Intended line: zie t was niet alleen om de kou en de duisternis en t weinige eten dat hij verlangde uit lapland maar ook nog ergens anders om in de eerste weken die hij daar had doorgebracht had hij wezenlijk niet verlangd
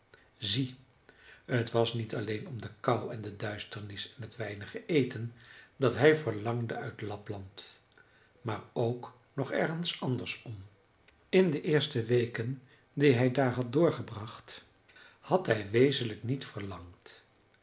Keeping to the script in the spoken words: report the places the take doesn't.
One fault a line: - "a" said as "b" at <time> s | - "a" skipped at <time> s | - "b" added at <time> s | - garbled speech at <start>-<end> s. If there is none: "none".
none